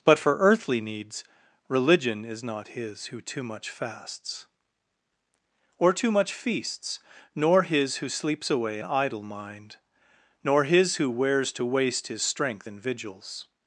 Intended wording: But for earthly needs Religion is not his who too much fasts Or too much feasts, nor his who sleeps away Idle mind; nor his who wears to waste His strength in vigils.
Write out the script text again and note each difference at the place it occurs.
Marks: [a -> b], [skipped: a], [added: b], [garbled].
But for earthly needs Religion is not his who too much fasts Or too much feasts, nor his who sleeps away Idle mind; nor his who wears to waste His strength in vigils.